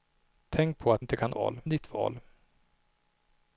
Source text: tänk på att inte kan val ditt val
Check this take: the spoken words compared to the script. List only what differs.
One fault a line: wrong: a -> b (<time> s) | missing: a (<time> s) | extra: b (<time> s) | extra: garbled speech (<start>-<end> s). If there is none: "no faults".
no faults